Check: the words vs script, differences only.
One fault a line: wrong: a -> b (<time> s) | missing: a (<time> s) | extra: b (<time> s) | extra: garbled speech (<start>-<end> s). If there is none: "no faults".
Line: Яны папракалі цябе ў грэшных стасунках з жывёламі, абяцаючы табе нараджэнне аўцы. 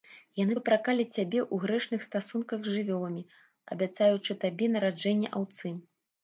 no faults